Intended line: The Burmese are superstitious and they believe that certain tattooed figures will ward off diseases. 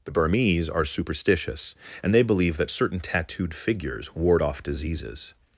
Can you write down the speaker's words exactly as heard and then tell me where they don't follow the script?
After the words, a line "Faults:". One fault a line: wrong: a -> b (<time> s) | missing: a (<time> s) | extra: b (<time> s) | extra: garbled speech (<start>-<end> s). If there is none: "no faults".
The Burmese are superstitious and they believe that certain tattooed figures ward off diseases.
Faults:
missing: will (4.1 s)